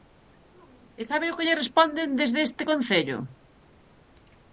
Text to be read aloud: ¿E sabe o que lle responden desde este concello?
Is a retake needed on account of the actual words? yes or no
no